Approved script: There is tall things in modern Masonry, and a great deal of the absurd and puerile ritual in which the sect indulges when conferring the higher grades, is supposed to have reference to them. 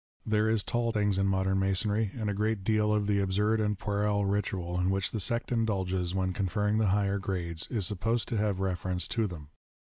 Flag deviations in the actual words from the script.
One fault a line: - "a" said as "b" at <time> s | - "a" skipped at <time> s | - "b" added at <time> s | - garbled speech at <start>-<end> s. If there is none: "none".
none